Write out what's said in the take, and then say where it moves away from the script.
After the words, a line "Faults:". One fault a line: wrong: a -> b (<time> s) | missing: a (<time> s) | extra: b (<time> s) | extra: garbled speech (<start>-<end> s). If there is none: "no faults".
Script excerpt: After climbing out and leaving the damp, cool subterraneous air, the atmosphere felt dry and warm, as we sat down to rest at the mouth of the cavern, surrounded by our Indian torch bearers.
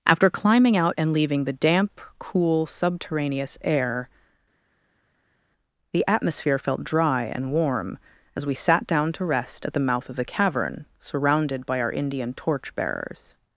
After climbing out and leaving the damp, cool subterraneous air, the atmosphere felt dry and warm, as we sat down to rest at the mouth of the cavern, surrounded by our Indian torch bearers.
Faults:
no faults